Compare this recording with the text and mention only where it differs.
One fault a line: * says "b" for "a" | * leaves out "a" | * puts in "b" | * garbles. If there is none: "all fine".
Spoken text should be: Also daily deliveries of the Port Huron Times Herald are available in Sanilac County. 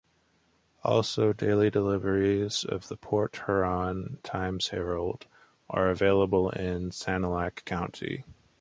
all fine